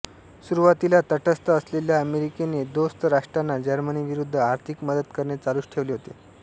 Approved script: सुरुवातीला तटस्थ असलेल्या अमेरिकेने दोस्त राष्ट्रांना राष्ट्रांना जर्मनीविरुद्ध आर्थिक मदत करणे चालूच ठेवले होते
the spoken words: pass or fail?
fail